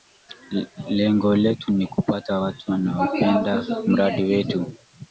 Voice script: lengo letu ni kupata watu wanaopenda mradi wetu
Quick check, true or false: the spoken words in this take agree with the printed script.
true